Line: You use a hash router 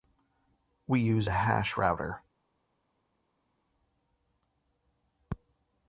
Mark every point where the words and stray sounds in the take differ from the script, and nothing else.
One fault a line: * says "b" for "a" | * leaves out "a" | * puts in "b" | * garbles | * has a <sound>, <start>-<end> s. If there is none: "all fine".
* says "We" for "You"